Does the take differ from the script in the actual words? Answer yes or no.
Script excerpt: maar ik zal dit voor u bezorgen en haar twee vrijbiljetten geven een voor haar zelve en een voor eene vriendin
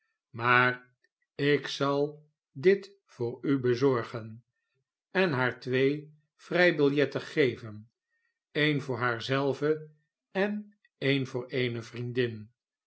no